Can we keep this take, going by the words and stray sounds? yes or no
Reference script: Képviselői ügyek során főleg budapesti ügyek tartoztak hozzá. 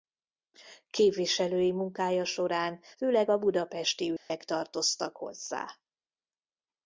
no